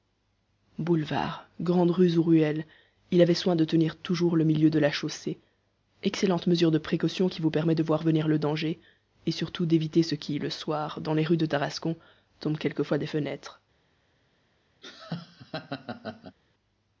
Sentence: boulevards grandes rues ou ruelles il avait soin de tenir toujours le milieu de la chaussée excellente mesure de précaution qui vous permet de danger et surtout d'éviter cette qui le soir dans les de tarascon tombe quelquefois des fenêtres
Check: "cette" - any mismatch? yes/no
yes